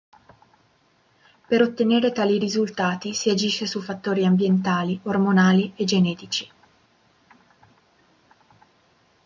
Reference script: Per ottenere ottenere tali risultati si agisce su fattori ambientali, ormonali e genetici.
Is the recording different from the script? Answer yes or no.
yes